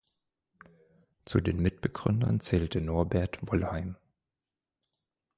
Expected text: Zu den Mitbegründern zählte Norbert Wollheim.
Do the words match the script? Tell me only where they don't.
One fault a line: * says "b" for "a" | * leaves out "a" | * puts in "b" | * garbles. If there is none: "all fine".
all fine